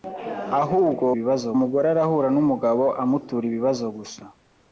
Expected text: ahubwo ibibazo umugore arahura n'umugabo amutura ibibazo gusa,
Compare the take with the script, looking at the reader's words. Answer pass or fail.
pass